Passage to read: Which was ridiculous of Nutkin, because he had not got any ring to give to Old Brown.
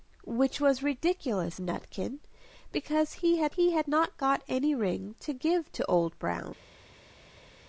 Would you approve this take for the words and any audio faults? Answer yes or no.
no